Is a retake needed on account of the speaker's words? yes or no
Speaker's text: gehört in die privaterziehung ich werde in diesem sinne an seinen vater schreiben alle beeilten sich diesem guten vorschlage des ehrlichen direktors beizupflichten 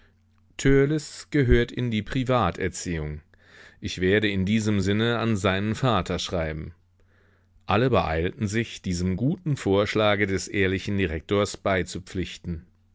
no